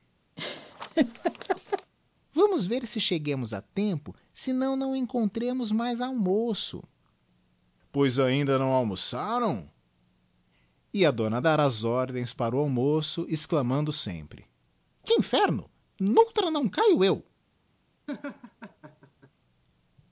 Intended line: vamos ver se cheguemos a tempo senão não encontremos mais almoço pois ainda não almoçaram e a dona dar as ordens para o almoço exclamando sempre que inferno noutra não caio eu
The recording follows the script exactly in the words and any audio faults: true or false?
false